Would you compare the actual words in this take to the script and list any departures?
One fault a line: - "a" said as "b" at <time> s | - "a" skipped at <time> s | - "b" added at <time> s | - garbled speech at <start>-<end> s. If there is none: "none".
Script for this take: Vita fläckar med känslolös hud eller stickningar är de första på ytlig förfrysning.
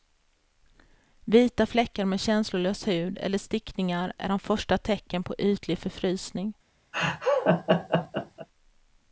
- "tecknen" added at 4.8 s